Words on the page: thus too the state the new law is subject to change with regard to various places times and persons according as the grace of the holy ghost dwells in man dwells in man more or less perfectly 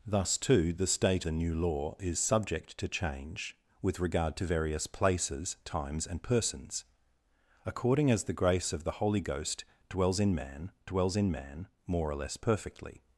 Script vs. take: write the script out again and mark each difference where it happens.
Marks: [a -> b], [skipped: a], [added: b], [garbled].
thus too the state the new law is subject to change with regard to various places times and persons according as the grace of the holy ghost dwells in man dwells in man more or less perfectly